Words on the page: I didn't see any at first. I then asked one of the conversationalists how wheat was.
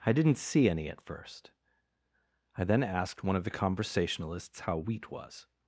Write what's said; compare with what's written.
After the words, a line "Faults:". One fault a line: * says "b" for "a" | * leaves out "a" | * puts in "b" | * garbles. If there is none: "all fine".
I didn't see any at first. I then asked one of the conversationalists how wheat was.
Faults:
all fine